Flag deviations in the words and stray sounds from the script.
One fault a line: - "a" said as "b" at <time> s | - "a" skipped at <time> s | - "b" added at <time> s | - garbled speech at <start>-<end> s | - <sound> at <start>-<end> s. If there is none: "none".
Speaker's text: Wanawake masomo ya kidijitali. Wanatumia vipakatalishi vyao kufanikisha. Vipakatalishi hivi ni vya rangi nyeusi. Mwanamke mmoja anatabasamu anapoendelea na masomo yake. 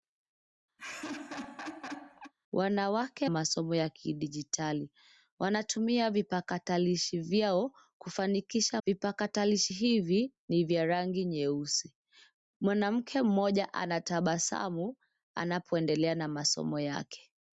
- laugh at 0.8-2.3 s